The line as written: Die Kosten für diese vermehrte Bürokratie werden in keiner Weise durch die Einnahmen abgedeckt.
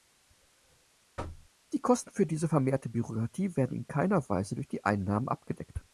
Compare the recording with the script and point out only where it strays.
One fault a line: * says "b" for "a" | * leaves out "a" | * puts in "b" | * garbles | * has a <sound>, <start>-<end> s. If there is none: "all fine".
* has a thud, 1.2-1.5 s